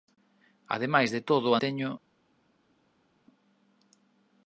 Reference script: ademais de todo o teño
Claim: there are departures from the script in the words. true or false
false